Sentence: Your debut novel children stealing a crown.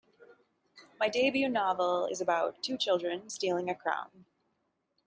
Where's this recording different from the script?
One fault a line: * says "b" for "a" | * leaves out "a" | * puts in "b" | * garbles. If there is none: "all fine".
* says "My" for "Your"
* puts in "is about two"